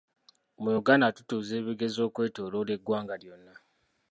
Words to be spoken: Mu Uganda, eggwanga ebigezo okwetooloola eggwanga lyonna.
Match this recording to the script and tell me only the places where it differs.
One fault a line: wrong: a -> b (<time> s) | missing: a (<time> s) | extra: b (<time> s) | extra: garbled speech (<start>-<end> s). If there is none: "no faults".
wrong: eggwanga -> tutuuza (1.2 s)